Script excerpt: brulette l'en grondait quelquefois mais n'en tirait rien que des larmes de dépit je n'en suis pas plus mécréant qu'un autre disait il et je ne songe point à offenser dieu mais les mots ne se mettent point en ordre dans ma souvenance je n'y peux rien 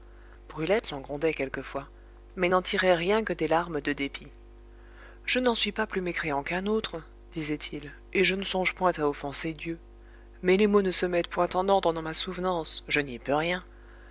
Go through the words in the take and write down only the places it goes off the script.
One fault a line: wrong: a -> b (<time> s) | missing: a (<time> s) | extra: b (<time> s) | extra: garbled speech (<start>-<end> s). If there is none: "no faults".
no faults